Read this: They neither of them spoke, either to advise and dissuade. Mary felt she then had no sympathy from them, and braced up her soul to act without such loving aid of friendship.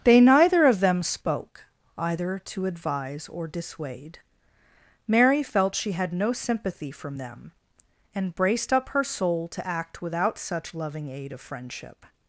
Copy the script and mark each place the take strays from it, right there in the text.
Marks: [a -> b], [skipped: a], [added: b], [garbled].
They neither of them spoke, either to advise [and -> or] dissuade. Mary felt she [skipped: then] had no sympathy from them, and braced up her soul to act without such loving aid of friendship.